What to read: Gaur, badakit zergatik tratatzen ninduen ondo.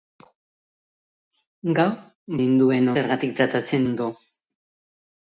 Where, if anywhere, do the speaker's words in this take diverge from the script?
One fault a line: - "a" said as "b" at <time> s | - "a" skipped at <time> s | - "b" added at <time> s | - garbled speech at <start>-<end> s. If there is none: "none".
- "badakit" said as "ninduen" at 2.4 s
- "ninduen" skipped at 3.8 s